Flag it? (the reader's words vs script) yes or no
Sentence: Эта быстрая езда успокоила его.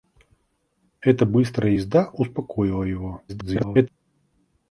yes